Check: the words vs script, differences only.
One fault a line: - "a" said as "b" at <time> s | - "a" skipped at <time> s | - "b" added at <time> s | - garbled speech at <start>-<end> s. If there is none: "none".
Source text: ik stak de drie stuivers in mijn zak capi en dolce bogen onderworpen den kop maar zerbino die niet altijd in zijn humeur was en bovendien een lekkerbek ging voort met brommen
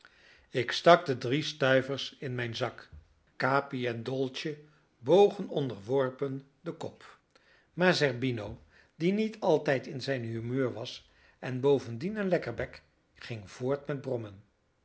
none